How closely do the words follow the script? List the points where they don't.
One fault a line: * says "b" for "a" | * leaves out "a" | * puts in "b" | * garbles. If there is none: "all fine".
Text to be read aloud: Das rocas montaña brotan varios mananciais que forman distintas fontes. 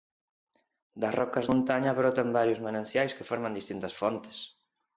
all fine